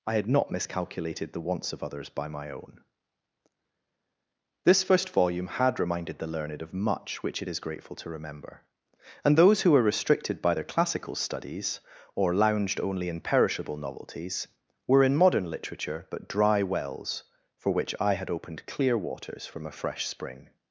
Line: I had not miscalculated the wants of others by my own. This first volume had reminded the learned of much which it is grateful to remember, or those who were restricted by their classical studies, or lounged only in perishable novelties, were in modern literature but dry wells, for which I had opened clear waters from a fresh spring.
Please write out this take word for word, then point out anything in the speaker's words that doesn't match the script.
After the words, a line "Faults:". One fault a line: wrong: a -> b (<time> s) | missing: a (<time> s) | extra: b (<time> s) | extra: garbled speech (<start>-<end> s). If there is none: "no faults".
I had not miscalculated the wants of others by my own. This first volume had reminded the learned of much which it is grateful to remember, and those who were restricted by their classical studies, or lounged only in perishable novelties, were in modern literature but dry wells, for which I had opened clear waters from a fresh spring.
Faults:
wrong: or -> and (9.2 s)